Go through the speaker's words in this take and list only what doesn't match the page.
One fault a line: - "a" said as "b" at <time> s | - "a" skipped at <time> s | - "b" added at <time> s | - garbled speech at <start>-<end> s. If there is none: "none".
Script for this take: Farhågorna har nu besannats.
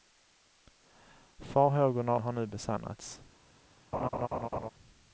none